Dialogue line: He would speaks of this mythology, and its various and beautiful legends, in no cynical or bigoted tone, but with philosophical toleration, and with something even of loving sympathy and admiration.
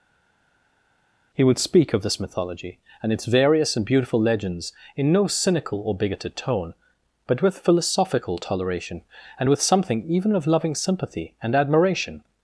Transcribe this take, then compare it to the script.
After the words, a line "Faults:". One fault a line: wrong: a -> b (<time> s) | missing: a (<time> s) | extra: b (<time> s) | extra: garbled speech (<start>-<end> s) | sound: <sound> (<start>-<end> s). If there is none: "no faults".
He would speak of this mythology, and its various and beautiful legends, in no cynical or bigoted tone, but with philosophical toleration, and with something even of loving sympathy and admiration.
Faults:
wrong: speaks -> speak (1.6 s)